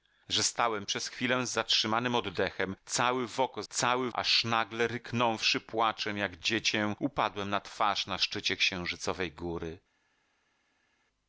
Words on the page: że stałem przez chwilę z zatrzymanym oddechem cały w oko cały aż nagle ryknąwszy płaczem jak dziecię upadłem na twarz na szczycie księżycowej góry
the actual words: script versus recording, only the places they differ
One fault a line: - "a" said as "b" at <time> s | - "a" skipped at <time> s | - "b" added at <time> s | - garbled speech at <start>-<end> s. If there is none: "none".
none